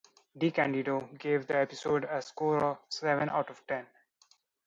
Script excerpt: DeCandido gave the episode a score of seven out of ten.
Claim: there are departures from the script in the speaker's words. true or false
false